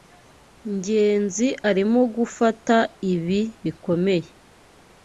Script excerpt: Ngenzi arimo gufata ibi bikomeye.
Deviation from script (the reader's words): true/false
false